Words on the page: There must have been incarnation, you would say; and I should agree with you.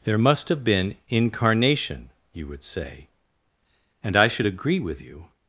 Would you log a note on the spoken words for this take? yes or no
no